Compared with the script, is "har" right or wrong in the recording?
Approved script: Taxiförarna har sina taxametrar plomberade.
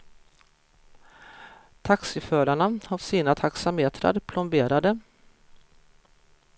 right